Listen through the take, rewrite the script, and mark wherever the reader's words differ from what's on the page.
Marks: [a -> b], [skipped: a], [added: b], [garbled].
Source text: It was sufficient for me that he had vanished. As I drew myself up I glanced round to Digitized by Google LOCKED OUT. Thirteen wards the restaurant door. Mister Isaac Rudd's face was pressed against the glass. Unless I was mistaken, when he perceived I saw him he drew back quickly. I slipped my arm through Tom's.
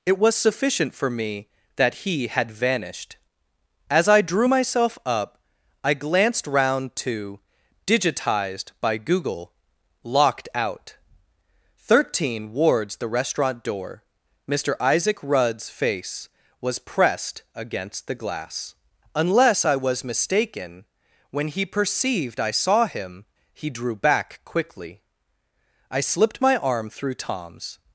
It was sufficient for me that he had vanished. As I drew myself up I glanced round to Digitized by Google LOCKED OUT. Thirteen wards the restaurant door. Mister Isaac Rudd's face was pressed against the glass. Unless I was mistaken, when he perceived I saw him he drew back quickly. I slipped my arm through Tom's.